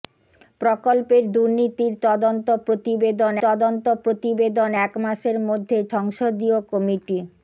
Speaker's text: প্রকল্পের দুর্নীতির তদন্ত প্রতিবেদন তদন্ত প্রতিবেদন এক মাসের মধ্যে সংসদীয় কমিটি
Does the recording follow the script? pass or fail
pass